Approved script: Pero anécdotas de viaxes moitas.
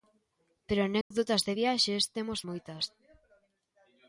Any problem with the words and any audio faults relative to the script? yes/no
yes